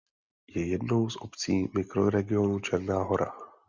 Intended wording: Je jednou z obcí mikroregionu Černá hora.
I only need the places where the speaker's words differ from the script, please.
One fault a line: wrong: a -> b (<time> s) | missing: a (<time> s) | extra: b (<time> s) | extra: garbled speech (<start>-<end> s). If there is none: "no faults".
no faults